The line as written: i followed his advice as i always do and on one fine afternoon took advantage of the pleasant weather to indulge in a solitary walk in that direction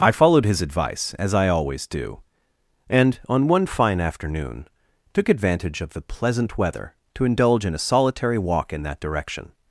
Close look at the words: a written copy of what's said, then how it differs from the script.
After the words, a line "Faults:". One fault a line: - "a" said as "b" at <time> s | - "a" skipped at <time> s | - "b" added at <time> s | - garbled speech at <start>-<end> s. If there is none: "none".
i followed his advice as i always do and on one fine afternoon took advantage of the pleasant weather to indulge in a solitary walk in that direction
Faults:
none